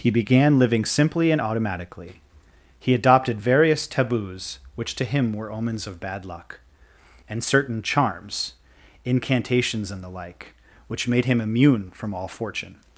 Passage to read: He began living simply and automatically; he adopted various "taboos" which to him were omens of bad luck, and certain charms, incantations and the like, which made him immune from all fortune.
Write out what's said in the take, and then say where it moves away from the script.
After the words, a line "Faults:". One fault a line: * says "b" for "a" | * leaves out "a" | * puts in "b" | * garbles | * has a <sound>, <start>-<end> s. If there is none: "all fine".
He began living simply and automatically; he adopted various "taboos" which to him were omens of bad luck, and certain charms, incantations and the like, which made him immune from all fortune.
Faults:
all fine